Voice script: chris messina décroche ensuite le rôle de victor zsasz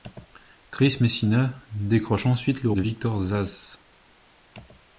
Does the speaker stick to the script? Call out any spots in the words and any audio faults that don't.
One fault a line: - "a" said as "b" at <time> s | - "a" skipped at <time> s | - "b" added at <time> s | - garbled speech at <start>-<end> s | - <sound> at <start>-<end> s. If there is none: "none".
- "rôle" skipped at 2.7 s